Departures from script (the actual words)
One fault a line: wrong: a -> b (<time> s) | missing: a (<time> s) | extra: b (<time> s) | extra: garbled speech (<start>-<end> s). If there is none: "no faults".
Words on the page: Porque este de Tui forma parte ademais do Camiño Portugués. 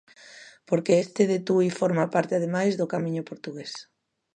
no faults